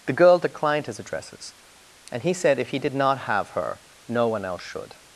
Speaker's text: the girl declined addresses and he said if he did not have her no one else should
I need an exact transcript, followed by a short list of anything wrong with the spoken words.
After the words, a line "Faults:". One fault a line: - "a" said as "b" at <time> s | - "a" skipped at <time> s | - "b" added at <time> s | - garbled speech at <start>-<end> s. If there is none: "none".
the girl declined his addresses and he said if he did not have her no one else should
Faults:
- "his" added at 0.9 s